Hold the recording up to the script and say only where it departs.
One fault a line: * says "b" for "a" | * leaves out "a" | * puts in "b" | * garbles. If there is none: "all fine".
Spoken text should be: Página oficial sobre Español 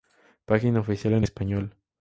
* says "en" for "sobre"